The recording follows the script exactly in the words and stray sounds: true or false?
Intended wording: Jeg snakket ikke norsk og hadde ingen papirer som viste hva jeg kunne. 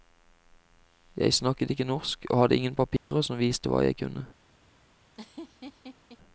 false